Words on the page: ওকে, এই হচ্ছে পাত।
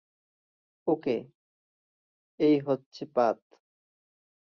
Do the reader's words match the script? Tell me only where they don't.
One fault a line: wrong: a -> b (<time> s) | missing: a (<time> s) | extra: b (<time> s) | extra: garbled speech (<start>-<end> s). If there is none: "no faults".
no faults